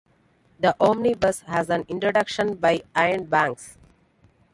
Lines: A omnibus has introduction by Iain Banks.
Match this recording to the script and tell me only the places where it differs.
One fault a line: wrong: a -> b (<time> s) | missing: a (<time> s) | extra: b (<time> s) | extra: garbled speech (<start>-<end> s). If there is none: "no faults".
wrong: A -> The (0.6 s)
extra: an (1.7 s)